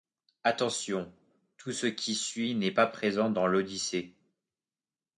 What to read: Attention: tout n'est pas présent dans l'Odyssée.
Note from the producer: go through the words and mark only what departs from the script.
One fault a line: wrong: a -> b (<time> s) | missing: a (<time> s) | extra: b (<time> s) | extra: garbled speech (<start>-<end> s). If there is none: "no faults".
extra: ce qui suit (1.7 s)